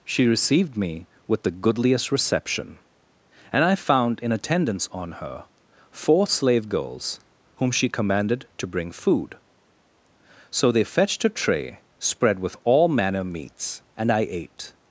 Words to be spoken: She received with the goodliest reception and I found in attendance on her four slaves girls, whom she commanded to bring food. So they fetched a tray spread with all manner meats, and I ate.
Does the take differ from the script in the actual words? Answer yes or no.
yes